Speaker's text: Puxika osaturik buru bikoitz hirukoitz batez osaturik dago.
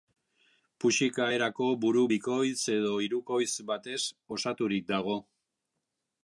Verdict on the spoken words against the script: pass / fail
fail